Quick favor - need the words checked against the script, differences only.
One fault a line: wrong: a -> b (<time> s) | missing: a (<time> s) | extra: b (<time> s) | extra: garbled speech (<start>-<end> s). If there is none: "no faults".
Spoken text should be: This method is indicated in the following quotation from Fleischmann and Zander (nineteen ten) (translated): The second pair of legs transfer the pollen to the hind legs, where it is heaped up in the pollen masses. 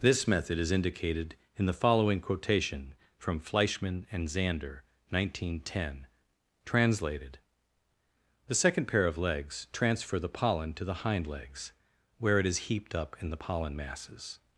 no faults